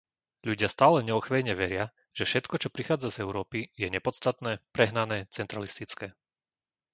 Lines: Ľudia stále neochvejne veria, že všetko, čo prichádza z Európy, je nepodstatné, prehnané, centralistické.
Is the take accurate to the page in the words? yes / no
yes